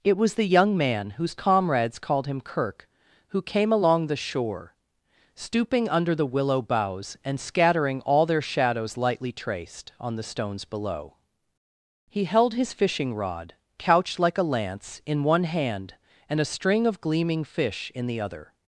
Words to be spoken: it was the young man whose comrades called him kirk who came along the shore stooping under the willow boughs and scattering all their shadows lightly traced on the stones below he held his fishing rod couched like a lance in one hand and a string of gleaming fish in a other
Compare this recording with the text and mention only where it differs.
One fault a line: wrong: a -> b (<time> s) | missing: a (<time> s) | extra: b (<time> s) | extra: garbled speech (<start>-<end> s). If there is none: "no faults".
wrong: a -> the (18.0 s)